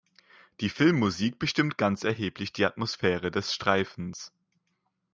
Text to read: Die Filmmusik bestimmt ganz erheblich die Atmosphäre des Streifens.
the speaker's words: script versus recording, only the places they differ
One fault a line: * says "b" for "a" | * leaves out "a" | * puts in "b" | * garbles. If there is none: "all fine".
all fine